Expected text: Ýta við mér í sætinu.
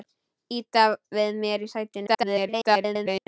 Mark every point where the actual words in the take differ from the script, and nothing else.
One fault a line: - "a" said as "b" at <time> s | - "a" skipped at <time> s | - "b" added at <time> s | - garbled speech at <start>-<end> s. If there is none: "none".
- garbled speech at 2.1-3.3 s